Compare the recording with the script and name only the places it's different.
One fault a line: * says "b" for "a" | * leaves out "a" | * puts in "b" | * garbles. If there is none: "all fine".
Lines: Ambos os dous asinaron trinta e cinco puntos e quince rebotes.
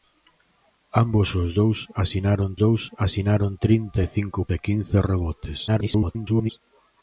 * puts in "dous asinaron"
* leaves out "puntos"
* garbles